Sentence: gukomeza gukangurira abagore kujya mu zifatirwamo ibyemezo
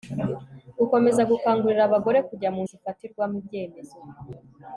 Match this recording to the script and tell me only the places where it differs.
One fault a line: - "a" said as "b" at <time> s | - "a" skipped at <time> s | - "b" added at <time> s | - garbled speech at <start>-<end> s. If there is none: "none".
none